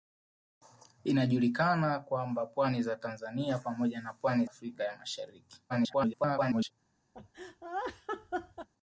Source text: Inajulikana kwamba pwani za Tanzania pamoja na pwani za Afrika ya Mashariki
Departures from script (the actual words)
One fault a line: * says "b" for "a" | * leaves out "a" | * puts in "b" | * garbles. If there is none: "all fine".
* leaves out "za"
* garbles